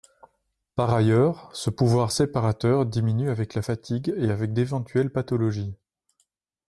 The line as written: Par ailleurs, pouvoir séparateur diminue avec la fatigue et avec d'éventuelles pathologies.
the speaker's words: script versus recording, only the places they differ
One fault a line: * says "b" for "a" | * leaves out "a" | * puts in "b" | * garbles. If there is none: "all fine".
* puts in "ce"